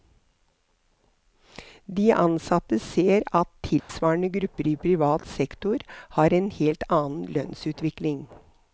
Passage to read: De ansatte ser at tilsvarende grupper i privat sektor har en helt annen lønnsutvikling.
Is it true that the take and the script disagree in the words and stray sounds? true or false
true